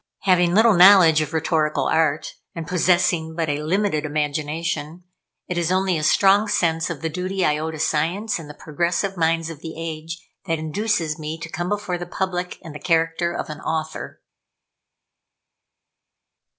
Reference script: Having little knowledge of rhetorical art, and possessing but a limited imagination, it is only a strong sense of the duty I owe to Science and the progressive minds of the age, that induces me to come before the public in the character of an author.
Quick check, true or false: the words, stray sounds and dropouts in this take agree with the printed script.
true